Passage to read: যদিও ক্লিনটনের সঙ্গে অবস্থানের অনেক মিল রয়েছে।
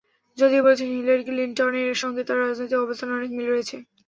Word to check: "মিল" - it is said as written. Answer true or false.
true